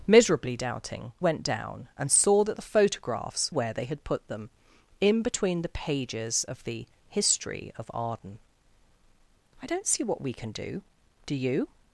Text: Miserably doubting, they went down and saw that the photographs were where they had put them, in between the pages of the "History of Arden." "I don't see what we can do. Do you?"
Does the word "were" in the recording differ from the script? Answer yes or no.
yes